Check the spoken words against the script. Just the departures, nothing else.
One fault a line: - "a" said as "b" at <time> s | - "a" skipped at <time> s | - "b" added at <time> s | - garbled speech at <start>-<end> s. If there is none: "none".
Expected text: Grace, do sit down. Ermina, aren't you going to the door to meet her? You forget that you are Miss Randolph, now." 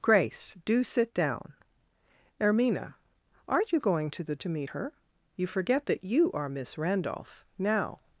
- "door" skipped at 4.3 s